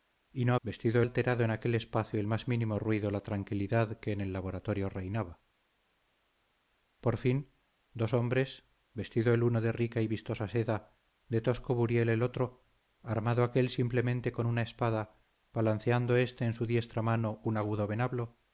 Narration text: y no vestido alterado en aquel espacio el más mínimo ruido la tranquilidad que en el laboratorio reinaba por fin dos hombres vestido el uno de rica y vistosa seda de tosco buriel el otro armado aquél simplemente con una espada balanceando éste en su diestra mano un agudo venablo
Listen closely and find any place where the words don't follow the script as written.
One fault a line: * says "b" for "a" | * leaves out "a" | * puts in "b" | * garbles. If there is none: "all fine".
all fine